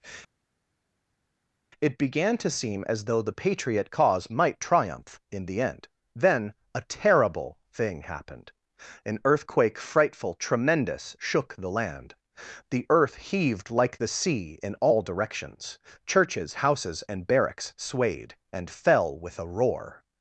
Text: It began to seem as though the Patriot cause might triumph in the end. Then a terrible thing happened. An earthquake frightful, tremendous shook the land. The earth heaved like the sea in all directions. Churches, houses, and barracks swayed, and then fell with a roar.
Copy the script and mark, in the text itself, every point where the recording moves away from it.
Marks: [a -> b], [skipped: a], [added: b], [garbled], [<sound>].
It began to seem as though the Patriot cause might triumph in the end. Then a terrible thing happened. An earthquake frightful, tremendous shook the land. The earth heaved like the sea in all directions. Churches, houses, and barracks swayed, and [skipped: then] fell with a roar.